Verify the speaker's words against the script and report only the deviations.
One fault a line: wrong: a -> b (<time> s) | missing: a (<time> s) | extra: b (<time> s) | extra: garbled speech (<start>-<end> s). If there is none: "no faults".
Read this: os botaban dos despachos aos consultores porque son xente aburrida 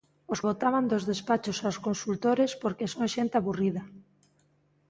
no faults